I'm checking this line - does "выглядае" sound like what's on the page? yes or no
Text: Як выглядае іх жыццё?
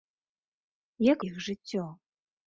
no